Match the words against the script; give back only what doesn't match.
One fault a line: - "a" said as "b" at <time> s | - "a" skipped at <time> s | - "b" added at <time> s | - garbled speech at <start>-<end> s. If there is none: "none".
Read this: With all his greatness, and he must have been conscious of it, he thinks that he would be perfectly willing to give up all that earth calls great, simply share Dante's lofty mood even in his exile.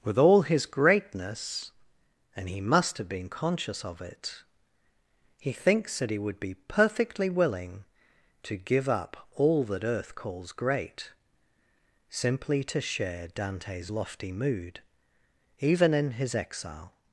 - "to" added at 12.6 s